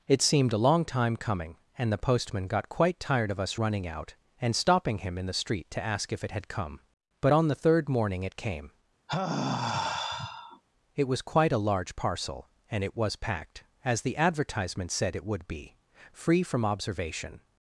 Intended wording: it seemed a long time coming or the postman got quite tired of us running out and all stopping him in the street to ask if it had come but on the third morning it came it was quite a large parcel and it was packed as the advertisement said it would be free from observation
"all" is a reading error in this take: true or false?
true